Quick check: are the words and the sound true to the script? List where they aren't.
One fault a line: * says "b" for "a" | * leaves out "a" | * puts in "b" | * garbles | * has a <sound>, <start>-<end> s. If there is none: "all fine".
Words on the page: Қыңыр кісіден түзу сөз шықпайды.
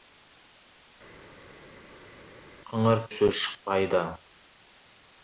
* leaves out "кісіден түзу"